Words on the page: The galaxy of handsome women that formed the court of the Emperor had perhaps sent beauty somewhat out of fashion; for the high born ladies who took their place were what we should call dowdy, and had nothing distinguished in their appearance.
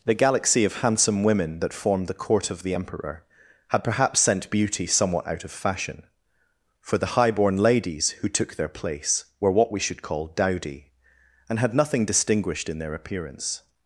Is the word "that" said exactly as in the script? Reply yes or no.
yes